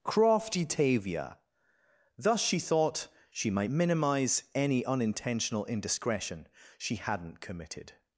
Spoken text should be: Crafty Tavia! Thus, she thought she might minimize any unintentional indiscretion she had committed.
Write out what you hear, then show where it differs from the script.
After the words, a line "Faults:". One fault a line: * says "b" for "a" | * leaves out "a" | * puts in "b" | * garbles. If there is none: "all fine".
Crafty Tavia! Thus, she thought she might minimize any unintentional indiscretion she hadn't committed.
Faults:
* says "hadn't" for "had"